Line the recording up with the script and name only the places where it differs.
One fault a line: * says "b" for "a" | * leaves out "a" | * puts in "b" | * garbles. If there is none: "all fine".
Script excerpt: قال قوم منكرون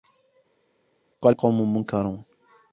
all fine